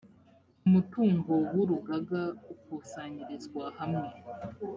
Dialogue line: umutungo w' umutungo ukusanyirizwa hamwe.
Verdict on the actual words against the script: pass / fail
fail